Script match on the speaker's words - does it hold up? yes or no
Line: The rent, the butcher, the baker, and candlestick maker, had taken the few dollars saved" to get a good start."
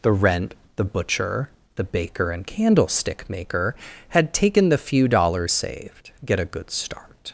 no